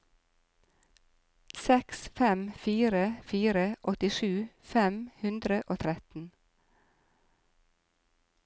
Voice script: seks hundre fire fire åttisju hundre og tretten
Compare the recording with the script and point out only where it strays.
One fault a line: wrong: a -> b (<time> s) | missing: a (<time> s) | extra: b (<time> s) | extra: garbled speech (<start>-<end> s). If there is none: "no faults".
wrong: hundre -> fem (2.2 s)
extra: fem (4.7 s)